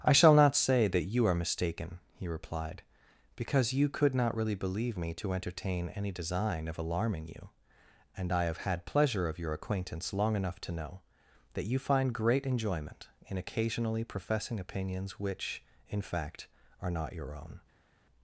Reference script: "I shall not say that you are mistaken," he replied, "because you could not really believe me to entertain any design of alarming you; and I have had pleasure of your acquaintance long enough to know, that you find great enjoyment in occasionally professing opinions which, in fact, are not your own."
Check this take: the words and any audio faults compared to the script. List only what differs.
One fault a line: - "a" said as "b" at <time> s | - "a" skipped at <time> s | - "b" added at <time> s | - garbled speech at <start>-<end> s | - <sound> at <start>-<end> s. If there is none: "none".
none